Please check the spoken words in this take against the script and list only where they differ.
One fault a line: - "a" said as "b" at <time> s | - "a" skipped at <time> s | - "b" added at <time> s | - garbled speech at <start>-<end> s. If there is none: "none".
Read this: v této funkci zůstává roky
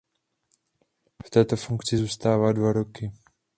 - "dva" added at 2.5 s